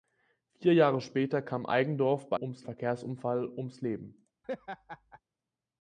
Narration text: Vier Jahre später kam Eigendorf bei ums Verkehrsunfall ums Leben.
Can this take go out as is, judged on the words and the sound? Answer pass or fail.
fail